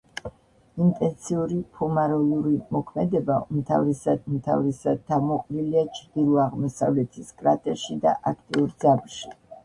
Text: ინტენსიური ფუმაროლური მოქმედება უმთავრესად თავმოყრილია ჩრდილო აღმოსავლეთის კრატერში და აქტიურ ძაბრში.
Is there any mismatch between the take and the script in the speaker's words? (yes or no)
yes